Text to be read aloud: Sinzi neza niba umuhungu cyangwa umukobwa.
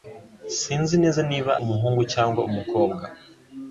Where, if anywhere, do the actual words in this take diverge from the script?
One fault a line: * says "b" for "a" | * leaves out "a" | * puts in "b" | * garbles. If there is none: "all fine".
all fine